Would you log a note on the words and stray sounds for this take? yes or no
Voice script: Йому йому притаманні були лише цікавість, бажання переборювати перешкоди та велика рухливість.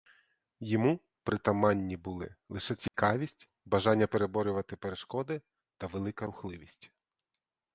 yes